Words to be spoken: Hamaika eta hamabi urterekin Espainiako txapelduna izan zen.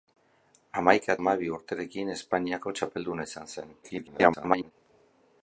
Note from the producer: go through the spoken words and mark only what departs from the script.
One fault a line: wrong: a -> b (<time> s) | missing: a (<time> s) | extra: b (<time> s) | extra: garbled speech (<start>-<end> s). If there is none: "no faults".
missing: eta (1.1 s)
extra: garbled speech (3.8-4.7 s)